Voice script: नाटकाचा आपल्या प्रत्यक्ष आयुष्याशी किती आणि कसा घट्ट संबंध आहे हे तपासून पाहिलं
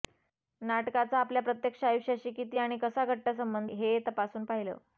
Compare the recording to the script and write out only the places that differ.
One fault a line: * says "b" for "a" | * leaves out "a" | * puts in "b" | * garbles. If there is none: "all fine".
* leaves out "आहे"